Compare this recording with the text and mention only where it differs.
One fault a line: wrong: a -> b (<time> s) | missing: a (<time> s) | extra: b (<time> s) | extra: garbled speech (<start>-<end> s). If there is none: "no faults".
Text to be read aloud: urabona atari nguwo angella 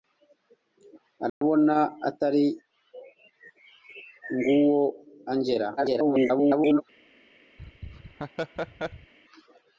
extra: garbled speech (5.8-6.8 s)